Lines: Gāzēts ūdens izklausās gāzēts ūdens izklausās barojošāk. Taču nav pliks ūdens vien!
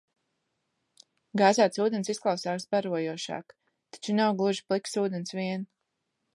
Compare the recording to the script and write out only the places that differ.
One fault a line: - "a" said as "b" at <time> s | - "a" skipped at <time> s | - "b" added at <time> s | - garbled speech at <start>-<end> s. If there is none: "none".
- "gāzēts ūdens izklausās" skipped at 2.6 s
- "gluži" added at 4.4 s